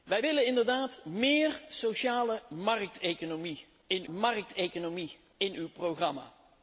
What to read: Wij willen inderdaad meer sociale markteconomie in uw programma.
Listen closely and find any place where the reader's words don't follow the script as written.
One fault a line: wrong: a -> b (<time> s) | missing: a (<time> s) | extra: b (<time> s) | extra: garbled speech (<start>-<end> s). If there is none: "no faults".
extra: markteconomie in (4.1 s)